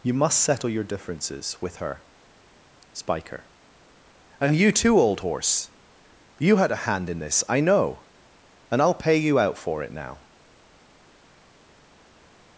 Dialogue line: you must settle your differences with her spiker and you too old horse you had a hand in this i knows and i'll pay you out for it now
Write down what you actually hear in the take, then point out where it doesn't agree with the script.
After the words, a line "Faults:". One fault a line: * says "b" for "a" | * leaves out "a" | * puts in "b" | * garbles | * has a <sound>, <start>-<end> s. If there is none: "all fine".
you must settle your differences with her spiker and you too old horse you had a hand in this i know and i'll pay you out for it now
Faults:
* says "know" for "knows"